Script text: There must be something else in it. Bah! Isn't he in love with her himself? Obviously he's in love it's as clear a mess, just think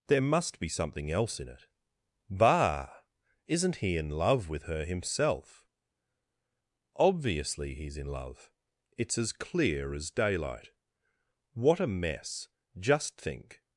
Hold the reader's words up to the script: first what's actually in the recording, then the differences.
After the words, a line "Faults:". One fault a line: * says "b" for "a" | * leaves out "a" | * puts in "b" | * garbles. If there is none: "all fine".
There must be something else in it. Bah! Isn't he in love with her himself? Obviously he's in love it's as clear as daylight. What a mess, just think
Faults:
* puts in "as daylight What"